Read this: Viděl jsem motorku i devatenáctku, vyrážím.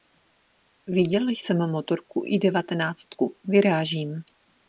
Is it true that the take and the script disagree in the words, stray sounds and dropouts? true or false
false